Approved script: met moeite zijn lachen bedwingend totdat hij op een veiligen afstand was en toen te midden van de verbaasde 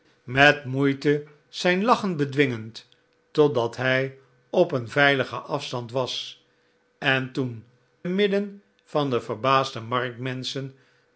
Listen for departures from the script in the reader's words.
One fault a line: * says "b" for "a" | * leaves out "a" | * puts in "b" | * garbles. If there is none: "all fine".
* leaves out "te"